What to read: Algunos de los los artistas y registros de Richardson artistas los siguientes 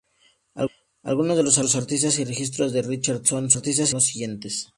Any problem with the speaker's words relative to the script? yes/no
no